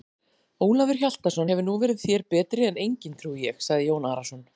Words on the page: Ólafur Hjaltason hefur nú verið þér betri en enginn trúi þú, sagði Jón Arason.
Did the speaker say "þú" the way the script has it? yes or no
no